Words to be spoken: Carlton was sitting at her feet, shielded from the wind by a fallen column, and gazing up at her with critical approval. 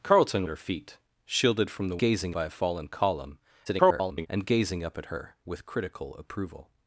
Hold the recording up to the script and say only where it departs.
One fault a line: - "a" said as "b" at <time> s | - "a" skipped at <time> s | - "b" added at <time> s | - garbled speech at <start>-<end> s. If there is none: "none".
- "was sitting" skipped at 0.5 s
- "wind" said as "gazing" at 2.0 s
- garbled speech at 3.7-4.3 s